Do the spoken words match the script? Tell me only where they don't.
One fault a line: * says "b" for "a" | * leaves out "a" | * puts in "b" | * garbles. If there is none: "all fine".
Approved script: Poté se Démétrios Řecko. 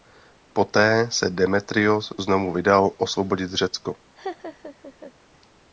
* puts in "znovu vydal osvobodit"